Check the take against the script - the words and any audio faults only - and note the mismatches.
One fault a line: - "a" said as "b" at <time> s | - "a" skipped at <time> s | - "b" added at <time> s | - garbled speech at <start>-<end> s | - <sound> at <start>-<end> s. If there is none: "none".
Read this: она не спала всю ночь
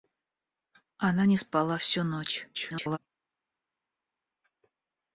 - garbled speech at 2.5-3.0 s